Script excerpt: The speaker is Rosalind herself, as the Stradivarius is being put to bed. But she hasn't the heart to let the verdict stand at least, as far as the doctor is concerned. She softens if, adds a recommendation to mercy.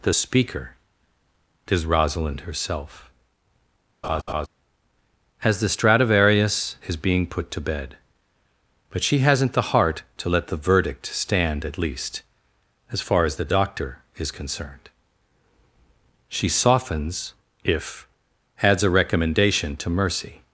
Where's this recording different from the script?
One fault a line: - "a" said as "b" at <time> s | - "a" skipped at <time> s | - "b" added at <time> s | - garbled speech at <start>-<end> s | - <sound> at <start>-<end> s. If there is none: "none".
- laugh at 4.0-4.5 s